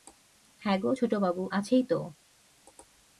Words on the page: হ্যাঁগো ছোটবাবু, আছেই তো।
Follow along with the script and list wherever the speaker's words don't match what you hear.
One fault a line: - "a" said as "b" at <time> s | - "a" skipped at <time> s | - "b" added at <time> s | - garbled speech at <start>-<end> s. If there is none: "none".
none